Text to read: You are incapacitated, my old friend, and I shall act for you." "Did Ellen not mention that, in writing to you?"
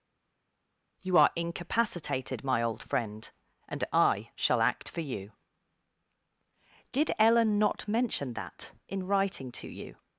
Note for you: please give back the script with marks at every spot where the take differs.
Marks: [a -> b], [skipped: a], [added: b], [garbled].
You are incapacitated, my old friend, and I shall act for you." "Did Ellen not mention that, in writing to you?"